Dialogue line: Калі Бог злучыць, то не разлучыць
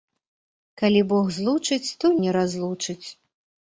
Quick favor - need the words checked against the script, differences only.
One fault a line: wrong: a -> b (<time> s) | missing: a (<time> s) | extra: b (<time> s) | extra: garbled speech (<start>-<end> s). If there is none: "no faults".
no faults